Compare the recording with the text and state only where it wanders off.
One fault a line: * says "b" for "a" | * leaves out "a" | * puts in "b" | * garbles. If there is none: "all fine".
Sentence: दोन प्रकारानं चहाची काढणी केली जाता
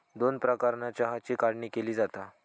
all fine